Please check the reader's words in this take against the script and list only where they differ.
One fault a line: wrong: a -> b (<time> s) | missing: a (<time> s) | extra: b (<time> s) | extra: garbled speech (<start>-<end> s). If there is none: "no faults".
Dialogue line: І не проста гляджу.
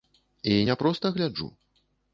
no faults